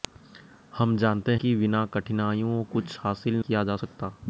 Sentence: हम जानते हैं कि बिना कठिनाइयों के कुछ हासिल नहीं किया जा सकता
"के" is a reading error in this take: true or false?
true